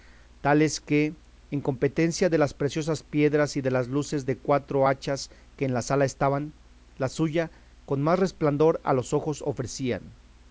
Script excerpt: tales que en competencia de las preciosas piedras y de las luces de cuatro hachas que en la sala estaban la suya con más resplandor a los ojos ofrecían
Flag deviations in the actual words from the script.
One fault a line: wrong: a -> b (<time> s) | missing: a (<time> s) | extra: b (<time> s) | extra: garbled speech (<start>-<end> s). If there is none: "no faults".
no faults